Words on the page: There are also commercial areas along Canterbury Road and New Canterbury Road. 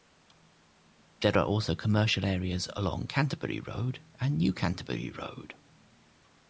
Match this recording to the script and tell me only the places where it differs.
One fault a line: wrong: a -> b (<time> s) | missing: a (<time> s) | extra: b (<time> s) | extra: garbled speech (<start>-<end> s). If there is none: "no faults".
no faults